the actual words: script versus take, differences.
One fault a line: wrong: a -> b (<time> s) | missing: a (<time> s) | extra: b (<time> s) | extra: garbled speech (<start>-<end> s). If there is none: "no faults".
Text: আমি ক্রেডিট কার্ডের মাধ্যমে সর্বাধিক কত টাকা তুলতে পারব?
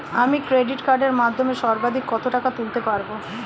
no faults